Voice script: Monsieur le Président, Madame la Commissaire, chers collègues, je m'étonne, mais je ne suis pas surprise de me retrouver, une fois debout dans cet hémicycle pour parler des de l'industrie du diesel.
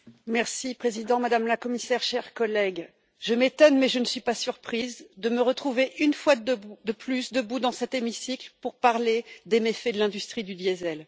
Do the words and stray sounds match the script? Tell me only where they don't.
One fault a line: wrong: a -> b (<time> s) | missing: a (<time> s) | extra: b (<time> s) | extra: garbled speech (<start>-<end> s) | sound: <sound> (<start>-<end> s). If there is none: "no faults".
extra: de plus (6.3 s)
extra: méfaits (9.6 s)